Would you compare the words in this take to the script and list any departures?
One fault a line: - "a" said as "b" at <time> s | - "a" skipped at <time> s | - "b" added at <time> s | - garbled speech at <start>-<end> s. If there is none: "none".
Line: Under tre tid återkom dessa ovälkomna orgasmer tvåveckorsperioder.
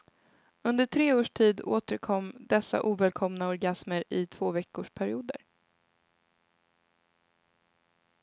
- "års" added at 1.1 s
- "i" added at 4.1 s